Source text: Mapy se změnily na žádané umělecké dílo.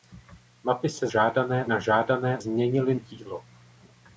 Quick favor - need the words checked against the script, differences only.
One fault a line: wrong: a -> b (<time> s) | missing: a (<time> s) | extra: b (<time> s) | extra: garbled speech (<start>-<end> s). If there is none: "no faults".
wrong: změnily -> žádané (1.1 s)
wrong: umělecké -> změnily (2.4 s)